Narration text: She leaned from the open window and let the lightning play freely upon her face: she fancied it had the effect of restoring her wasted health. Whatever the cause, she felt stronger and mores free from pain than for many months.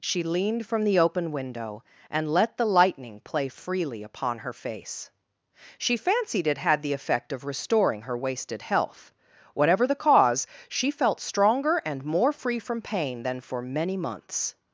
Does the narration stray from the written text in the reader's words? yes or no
yes